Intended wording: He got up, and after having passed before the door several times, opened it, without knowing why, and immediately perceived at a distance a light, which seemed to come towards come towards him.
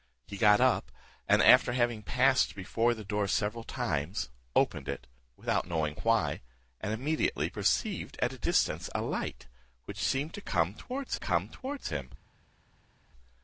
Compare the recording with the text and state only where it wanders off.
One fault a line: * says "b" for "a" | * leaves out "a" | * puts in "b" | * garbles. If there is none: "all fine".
all fine